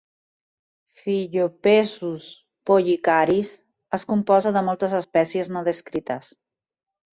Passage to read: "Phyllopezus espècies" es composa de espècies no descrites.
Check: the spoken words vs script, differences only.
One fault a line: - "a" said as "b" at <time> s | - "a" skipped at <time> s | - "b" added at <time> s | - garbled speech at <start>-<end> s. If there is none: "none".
- "espècies" said as "pollicaris" at 2.7 s
- "moltes" added at 4.7 s